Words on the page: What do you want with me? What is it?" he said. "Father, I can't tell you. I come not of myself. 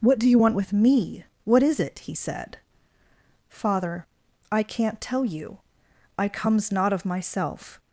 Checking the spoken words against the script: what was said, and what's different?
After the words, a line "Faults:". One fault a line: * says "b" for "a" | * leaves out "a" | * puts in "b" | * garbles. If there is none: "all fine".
What do you want with me? What is it?" he said. "Father, I can't tell you. I comes not of myself.
Faults:
* says "comes" for "come"